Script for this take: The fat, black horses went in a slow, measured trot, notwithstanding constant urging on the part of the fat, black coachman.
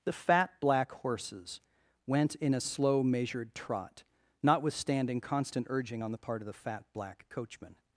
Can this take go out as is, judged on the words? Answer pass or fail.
pass